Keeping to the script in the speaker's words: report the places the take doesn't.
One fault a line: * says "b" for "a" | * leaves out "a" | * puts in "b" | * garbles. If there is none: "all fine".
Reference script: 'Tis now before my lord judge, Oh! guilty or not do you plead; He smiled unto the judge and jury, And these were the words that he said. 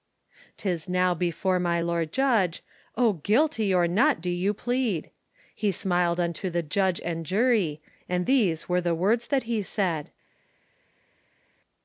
all fine